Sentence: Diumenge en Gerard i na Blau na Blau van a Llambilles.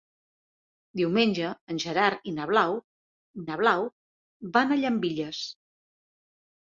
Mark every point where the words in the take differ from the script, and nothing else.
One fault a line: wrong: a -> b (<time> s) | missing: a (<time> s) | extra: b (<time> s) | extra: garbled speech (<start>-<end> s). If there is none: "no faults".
no faults